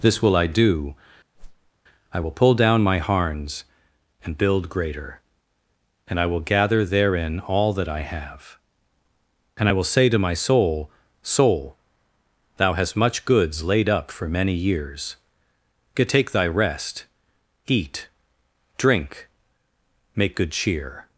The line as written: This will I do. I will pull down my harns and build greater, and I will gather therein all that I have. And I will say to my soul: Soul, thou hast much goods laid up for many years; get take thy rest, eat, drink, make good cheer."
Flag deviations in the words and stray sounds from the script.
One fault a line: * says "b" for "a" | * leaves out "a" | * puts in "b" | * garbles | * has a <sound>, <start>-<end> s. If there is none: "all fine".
* has a whoosh, 1.3-1.7 s